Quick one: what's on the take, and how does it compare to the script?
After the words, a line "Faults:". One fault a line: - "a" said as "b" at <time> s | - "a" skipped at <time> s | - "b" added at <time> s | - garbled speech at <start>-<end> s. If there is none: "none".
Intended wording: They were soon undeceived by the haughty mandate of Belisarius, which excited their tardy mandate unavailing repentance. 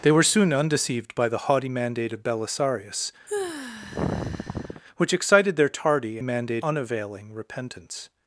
They were soon undeceived by the haughty mandate of Belisarius, which excited their tardy mandate unavailing repentance.
Faults:
none